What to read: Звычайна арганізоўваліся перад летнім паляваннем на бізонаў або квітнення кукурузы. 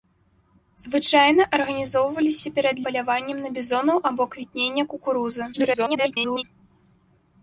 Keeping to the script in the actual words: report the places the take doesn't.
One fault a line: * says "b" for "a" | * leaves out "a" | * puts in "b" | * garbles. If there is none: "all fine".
* leaves out "летнім"
* garbles